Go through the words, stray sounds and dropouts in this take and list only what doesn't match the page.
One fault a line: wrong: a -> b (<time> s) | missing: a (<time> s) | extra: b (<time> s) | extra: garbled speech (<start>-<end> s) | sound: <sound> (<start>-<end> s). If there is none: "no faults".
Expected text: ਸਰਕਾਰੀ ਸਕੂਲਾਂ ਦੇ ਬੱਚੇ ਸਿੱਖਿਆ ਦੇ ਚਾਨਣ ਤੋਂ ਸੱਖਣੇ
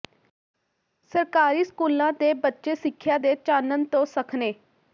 no faults